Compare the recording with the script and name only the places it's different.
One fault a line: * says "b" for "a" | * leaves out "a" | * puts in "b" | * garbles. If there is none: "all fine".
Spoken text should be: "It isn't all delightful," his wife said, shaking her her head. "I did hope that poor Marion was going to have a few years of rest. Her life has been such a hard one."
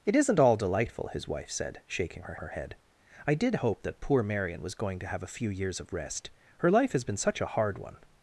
all fine